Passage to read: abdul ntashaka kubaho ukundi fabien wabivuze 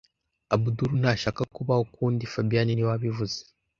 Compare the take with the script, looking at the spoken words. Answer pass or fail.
fail